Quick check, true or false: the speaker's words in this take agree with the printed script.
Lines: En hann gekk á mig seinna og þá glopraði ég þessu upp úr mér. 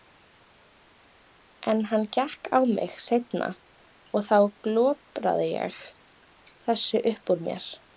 true